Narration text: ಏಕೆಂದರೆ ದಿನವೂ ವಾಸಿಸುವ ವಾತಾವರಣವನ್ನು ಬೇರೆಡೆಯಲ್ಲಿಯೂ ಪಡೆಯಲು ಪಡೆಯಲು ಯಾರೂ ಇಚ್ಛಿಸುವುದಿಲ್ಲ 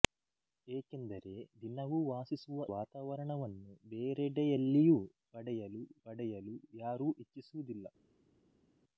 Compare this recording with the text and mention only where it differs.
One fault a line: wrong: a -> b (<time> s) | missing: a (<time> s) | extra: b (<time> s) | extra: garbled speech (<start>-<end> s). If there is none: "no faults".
no faults